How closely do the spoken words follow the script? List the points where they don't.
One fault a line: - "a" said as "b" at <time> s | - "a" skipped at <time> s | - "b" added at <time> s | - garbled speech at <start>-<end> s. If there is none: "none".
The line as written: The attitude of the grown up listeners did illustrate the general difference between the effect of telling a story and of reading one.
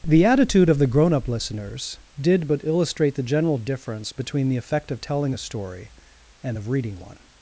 - "but" added at 2.5 s